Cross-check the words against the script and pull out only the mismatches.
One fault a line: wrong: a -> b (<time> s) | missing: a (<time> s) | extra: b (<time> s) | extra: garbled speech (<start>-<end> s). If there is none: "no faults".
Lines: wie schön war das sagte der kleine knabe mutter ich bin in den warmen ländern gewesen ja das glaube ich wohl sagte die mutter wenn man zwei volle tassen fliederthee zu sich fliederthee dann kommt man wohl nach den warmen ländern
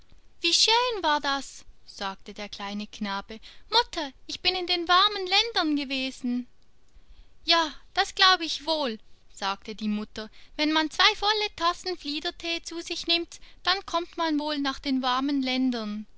wrong: fliederthee -> nimmt (13.1 s)